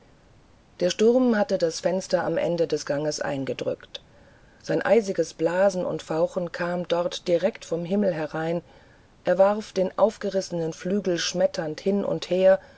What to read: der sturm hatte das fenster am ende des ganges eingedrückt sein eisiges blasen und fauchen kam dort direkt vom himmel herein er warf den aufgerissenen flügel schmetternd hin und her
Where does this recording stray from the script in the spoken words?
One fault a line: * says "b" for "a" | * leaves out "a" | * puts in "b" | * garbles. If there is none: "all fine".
all fine